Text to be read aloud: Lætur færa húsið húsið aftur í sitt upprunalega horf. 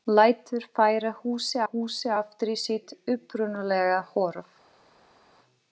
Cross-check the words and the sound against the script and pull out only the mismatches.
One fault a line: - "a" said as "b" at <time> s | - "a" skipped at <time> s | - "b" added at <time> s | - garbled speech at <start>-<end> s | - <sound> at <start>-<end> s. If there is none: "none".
none